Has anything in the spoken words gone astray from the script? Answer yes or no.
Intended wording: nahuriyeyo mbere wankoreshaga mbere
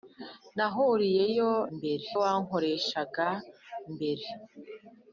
no